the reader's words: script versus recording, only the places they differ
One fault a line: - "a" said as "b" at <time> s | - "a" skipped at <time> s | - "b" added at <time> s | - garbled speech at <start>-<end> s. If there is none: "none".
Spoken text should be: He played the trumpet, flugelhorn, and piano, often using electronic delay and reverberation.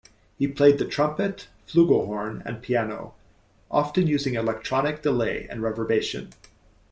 none